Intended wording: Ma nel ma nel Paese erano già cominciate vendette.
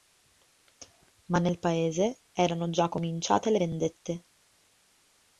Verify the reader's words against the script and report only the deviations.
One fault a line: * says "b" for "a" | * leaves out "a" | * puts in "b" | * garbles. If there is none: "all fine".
* leaves out "ma nel"
* puts in "le"